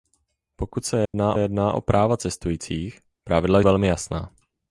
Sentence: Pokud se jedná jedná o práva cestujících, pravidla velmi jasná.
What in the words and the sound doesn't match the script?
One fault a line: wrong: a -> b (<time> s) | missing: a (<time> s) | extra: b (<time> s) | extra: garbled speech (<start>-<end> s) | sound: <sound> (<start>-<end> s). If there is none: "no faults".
sound: dropout (1.1-1.1 s)